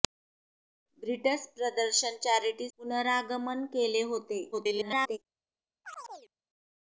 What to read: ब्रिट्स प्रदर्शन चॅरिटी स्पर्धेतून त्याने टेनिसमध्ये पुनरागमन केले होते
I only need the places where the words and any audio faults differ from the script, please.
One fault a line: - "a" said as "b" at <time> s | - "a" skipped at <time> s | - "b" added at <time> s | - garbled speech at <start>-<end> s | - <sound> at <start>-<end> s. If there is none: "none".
- "स्पर्धेतून त्याने टेनिसमध्ये" skipped at 2.7 s
- garbled speech at 4.5-5.2 s
- chirp at 5.8-6.3 s